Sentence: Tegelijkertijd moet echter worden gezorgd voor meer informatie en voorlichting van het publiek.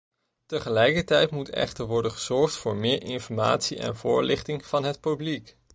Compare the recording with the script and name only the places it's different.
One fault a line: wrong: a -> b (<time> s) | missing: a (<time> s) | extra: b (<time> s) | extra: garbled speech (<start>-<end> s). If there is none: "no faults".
no faults